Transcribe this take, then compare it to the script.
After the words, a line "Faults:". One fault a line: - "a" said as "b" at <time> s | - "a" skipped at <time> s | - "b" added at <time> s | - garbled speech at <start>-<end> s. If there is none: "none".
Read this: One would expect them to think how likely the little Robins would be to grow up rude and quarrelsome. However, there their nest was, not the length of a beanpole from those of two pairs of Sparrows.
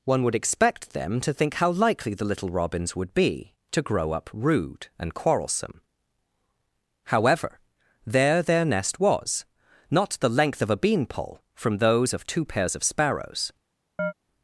One would expect them to think how likely the little Robins would be to grow up rude and quarrelsome. However, there their nest was, not the length of a beanpole from those of two pairs of Sparrows.
Faults:
none